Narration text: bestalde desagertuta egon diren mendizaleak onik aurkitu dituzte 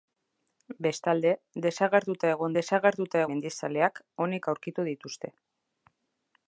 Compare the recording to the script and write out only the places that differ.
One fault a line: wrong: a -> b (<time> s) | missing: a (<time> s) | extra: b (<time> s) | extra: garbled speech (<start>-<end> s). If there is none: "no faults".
wrong: diren -> desagertuta (2.6 s)